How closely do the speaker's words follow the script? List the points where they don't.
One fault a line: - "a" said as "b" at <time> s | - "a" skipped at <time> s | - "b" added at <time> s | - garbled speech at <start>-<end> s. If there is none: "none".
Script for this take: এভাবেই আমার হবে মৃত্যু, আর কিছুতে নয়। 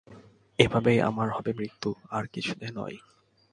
none